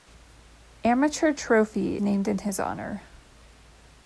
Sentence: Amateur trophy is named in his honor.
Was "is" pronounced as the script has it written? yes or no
no